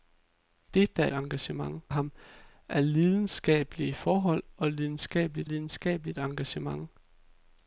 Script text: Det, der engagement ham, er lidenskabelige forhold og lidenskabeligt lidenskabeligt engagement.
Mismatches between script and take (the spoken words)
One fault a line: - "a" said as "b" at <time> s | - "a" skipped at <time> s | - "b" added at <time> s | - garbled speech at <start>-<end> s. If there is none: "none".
none